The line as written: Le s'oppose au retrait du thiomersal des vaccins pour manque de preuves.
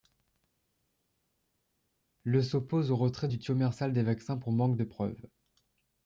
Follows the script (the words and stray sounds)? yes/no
yes